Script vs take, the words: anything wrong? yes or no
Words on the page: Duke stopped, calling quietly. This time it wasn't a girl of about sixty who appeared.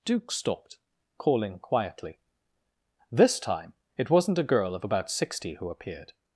no